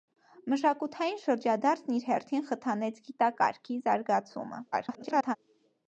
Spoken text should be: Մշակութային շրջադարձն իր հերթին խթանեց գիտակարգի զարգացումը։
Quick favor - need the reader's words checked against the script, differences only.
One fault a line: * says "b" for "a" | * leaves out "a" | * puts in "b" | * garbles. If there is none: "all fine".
* garbles